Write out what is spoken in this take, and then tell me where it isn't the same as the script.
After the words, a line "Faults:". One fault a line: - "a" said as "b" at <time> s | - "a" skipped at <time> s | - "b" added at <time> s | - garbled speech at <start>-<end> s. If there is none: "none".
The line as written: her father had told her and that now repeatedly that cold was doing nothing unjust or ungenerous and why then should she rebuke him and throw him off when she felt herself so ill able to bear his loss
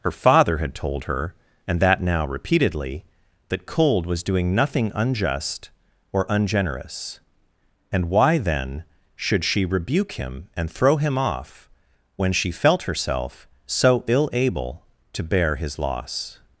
her father had told her and that now repeatedly that cold was doing nothing unjust or ungenerous and why then should she rebuke him and throw him off when she felt herself so ill able to bear his loss
Faults:
none